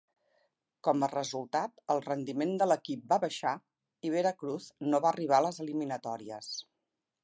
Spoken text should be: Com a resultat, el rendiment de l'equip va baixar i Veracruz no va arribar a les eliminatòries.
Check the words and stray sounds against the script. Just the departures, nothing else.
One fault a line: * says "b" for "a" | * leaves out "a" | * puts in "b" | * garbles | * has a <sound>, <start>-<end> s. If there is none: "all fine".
all fine